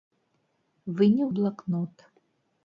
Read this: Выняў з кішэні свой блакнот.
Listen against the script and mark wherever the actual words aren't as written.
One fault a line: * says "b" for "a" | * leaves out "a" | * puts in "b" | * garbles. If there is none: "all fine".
* leaves out "з кішэні свой"